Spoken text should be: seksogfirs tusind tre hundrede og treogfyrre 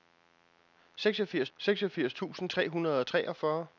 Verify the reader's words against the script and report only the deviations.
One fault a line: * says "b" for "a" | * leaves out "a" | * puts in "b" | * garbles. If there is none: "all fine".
* puts in "seksogfirs"